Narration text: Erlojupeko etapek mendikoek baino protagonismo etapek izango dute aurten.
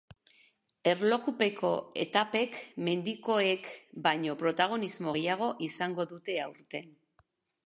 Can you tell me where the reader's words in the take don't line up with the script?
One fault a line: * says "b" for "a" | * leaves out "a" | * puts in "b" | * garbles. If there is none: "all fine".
* says "gehiago" for "etapek"